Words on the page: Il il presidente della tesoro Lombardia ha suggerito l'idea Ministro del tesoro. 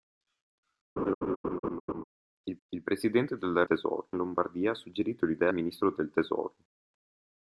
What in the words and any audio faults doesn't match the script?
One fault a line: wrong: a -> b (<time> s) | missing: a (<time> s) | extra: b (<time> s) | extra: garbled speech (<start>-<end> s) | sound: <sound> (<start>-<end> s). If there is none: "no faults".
sound: laugh (1.0-2.0 s)